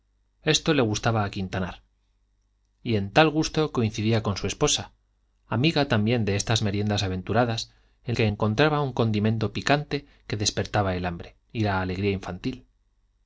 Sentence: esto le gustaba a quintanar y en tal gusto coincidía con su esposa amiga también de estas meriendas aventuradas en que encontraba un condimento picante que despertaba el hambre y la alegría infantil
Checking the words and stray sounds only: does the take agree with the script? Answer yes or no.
yes